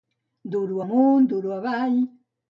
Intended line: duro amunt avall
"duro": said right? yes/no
yes